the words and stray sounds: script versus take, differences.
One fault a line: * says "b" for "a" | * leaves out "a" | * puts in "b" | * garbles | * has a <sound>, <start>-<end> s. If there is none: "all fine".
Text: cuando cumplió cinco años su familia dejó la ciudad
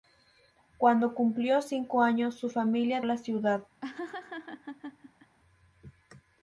* leaves out "dejó"
* has a laugh, 3.8-5.4 s